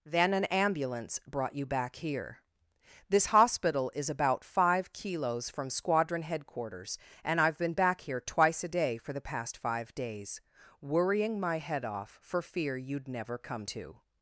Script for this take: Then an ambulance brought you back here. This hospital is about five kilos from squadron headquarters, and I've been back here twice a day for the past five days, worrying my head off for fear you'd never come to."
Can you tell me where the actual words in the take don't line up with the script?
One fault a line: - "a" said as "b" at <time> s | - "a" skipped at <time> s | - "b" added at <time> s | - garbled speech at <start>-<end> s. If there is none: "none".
none